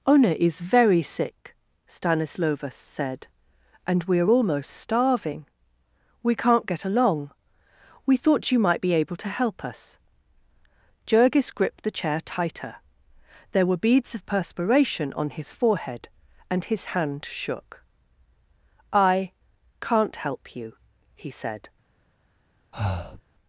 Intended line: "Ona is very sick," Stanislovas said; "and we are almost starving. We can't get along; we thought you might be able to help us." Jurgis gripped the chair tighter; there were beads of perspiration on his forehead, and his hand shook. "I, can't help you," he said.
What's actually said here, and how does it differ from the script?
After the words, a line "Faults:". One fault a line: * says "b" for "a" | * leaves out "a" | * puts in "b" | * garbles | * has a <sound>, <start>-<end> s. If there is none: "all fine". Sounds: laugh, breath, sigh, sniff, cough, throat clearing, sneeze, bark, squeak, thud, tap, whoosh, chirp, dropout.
"Ona is very sick," Stanislovas said; "and we are almost starving. We can't get along; we thought you might be able to help us." Jurgis gripped the chair tighter; there were beads of perspiration on his forehead, and his hand shook. "I, can't help you," he said.
Faults:
* has a breath, 22.7-23.2 s